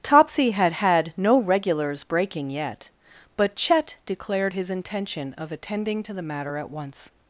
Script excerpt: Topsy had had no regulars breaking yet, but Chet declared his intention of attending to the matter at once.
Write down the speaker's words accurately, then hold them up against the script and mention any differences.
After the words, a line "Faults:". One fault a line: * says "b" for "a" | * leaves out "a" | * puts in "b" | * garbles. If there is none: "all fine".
Topsy had had no regulars breaking yet, but Chet declared his intention of attending to the matter at once.
Faults:
all fine